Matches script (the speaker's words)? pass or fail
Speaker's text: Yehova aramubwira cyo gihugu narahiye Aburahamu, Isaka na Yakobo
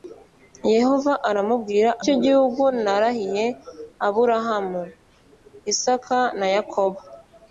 pass